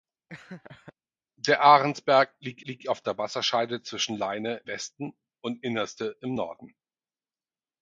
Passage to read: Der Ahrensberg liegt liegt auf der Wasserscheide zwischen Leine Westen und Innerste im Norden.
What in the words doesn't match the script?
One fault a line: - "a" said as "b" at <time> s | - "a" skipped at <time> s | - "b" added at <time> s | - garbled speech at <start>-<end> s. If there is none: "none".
none